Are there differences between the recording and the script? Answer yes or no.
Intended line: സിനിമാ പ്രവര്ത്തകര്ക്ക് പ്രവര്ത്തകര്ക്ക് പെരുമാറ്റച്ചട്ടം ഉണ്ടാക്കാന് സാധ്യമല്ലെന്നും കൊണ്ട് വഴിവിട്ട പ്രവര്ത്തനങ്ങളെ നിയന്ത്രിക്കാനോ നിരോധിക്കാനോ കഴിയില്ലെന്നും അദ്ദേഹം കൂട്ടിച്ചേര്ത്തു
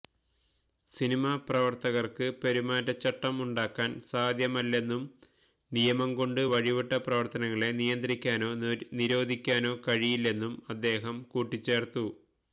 yes